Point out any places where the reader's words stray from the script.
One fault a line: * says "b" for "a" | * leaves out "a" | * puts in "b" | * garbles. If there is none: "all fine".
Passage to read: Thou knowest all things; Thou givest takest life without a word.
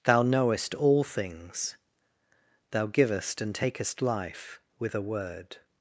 * puts in "and"
* says "with" for "without"